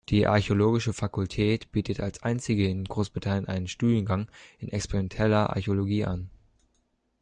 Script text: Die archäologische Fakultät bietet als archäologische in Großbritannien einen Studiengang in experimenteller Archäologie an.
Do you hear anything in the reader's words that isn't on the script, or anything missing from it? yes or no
yes